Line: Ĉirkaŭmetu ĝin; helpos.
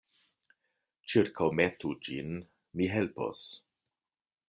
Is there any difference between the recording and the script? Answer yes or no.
yes